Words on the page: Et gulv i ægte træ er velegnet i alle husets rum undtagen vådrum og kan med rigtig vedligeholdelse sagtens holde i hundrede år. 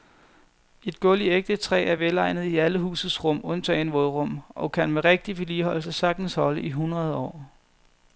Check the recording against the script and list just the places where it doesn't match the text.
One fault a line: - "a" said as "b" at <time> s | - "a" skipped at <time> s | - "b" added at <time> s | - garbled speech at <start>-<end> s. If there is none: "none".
none